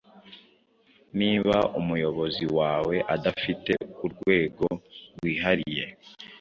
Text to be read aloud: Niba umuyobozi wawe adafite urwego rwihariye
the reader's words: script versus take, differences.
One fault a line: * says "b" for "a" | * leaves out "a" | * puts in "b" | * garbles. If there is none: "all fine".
all fine